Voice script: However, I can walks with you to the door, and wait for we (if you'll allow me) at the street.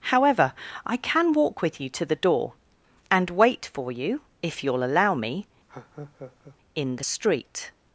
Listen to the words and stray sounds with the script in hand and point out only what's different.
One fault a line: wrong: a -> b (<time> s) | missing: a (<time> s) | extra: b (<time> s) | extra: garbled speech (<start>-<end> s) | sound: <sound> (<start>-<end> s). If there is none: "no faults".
wrong: walks -> walk (1.3 s)
wrong: we -> you (3.9 s)
sound: laugh (5.7-6.6 s)
wrong: at -> in (6.7 s)